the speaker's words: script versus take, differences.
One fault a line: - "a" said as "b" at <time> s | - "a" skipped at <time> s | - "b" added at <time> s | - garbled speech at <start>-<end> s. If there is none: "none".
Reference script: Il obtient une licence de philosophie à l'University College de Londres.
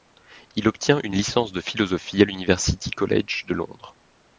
none